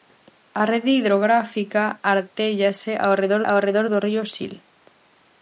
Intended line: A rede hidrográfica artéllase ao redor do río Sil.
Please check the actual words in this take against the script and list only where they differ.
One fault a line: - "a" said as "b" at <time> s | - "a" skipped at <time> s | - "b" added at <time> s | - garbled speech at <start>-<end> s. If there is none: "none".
- "ao redor" added at 3.5 s